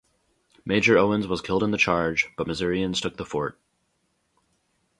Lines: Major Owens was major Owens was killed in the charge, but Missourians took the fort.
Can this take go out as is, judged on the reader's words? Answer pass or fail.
fail